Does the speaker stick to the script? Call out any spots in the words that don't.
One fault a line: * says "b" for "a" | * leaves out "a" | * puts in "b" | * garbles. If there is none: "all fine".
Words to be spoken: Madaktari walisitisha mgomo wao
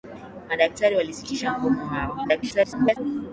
* garbles